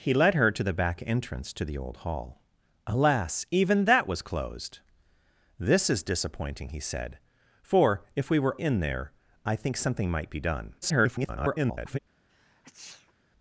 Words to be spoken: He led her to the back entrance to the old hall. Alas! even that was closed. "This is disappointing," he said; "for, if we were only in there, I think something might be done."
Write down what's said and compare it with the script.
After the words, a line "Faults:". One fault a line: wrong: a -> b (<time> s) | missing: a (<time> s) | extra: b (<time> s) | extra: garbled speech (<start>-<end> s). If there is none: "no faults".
He led her to the back entrance to the old hall. Alas! even that was closed. "This is disappointing," he said; "for, if we were in there, I think something might be done." [garbled]
Faults:
missing: only (8.6 s)
extra: garbled speech (10.8-12.0 s)